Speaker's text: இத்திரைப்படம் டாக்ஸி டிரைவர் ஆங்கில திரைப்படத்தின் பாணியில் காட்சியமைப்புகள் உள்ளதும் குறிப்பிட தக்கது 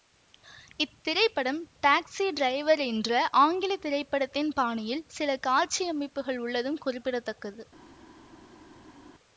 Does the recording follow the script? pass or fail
fail